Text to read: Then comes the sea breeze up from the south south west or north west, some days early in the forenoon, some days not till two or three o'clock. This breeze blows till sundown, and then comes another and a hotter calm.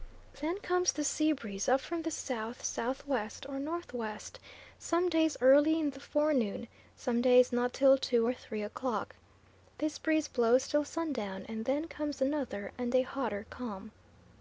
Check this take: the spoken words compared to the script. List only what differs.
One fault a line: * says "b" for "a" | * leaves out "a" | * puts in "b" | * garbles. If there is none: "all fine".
all fine